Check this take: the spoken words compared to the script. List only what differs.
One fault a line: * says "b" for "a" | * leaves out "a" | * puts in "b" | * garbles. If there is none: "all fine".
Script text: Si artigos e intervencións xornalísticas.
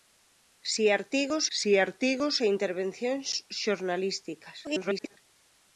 * puts in "si artigos"
* garbles